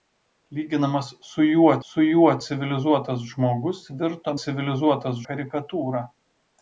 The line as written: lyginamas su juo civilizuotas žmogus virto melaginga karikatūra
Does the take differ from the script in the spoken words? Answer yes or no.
yes